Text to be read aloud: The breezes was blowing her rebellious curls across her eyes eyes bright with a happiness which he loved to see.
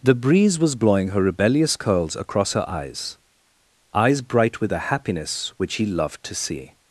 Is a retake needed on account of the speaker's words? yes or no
yes